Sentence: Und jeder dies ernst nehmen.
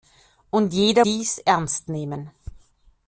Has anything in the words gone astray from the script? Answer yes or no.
no